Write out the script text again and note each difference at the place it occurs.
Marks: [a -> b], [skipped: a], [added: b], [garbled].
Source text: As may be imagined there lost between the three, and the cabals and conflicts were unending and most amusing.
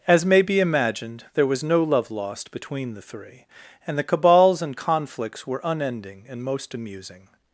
As may be imagined there [added: was no love] lost between the three, and the cabals and conflicts were unending and most amusing.